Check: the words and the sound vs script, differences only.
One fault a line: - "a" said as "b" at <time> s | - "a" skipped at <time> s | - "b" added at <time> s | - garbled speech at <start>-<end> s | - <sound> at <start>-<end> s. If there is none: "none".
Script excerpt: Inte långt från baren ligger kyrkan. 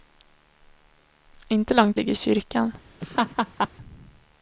- "från baren" skipped at 2.0 s
- laugh at 3.0-3.7 s